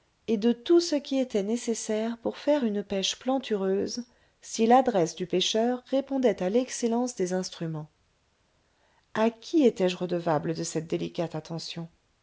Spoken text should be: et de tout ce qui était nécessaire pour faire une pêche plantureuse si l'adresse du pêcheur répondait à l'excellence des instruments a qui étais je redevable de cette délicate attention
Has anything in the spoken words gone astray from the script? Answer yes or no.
no